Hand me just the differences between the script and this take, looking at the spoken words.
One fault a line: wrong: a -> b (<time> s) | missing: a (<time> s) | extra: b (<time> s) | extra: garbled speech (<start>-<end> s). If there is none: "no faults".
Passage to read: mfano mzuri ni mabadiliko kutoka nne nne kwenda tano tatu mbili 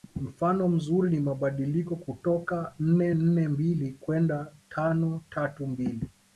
extra: mbili (3.5 s)